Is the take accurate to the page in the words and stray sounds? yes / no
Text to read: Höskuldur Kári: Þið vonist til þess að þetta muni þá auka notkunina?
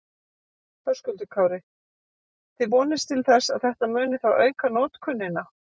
yes